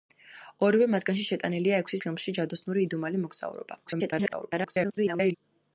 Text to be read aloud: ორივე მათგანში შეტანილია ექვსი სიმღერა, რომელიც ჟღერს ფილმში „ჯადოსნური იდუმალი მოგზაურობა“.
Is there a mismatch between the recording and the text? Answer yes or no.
yes